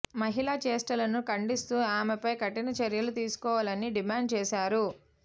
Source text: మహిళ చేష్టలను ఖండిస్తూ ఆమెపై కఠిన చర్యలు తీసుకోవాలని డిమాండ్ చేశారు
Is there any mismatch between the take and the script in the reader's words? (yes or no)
no